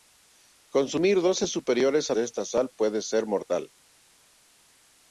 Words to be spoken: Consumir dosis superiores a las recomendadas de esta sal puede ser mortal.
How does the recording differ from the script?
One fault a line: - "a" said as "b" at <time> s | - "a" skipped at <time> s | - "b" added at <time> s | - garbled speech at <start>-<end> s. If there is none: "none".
- "las recomendadas" skipped at 2.1 s